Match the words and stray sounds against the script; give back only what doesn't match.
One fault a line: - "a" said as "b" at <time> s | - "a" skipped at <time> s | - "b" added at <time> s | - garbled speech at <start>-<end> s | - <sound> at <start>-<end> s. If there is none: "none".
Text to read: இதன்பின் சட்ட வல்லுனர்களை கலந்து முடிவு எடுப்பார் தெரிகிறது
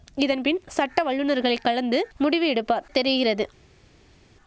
none